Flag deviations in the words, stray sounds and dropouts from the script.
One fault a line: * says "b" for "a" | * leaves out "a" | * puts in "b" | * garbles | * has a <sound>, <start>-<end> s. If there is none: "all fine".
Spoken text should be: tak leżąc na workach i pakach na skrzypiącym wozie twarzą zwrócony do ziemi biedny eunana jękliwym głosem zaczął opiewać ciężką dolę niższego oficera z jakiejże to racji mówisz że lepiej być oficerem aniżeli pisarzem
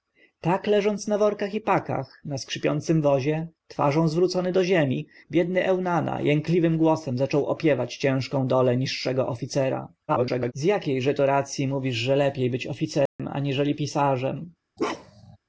* garbles
* has a dropout, 13.1-13.2 s
* has a bark, 14.8-15.4 s